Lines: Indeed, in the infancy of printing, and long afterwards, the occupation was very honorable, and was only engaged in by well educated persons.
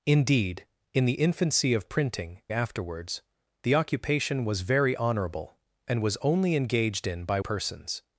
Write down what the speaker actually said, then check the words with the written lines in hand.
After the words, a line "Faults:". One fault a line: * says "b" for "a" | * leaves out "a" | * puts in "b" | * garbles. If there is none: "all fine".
Indeed, in the infancy of printing, afterwards, the occupation was very honorable, and was only engaged in by persons.
Faults:
* leaves out "and long"
* leaves out "well educated"